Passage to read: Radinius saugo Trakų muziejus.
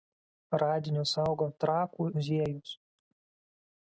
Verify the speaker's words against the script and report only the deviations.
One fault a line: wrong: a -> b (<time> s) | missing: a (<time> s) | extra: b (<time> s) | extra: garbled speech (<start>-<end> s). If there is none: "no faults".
no faults